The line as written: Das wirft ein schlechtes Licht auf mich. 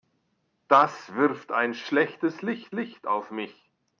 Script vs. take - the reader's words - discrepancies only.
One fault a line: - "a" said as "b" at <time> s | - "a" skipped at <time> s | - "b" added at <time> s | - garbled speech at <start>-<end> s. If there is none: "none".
- "Licht" added at 2.7 s